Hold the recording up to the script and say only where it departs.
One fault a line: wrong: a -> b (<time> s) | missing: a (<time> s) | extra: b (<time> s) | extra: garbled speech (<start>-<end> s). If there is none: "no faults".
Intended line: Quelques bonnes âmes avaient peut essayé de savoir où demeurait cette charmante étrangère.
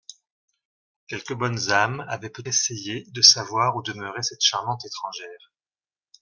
no faults